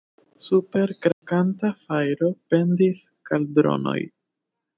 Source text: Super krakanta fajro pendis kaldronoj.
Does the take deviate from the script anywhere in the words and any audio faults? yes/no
yes